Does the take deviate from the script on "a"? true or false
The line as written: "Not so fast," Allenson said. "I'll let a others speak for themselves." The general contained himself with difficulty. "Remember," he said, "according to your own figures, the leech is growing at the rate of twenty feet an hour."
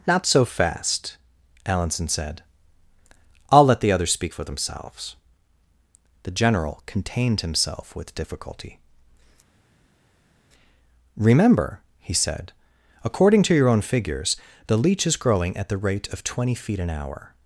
true